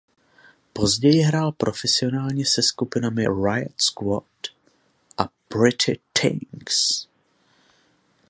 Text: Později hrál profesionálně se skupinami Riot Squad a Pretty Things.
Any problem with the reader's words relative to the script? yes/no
no